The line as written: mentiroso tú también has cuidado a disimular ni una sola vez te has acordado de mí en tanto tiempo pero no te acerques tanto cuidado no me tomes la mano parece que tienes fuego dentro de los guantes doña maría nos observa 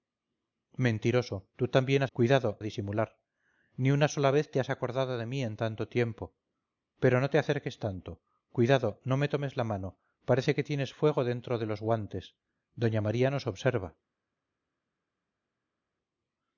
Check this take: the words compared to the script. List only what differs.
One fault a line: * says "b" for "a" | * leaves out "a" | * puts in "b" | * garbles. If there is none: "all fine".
all fine